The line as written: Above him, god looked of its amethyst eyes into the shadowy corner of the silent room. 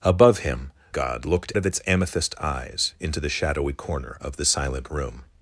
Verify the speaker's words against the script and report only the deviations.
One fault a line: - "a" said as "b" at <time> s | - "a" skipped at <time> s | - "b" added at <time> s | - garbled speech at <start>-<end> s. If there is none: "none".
none